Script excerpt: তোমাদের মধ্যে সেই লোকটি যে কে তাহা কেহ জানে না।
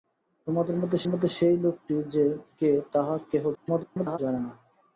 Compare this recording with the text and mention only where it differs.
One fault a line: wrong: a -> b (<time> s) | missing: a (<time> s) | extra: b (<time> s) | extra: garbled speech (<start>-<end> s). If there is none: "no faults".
extra: মধ্যে (1.1 s)
extra: garbled speech (3.5-4.2 s)